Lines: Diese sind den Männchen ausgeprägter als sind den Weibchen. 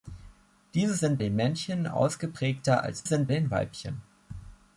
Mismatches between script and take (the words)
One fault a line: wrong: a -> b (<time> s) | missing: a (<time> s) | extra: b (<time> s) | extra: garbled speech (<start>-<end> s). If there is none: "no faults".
no faults